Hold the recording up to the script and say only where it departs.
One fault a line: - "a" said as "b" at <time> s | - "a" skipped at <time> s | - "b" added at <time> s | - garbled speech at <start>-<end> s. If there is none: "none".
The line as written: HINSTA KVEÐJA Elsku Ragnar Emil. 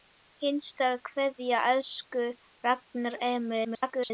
- garbled speech at 3.6-4.1 s